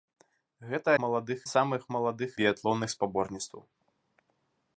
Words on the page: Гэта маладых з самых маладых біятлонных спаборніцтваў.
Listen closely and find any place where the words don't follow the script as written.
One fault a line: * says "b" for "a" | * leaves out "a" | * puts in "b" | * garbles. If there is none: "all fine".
all fine